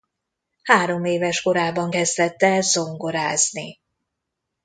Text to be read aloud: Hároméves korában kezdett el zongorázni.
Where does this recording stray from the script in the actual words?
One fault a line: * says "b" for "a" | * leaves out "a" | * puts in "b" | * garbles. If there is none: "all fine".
all fine